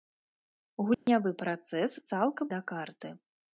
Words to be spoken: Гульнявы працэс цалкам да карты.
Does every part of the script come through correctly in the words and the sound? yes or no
no